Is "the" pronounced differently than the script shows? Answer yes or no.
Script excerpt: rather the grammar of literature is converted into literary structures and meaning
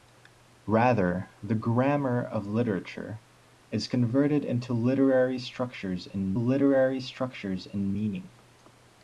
no